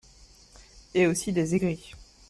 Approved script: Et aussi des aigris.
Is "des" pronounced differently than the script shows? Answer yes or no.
no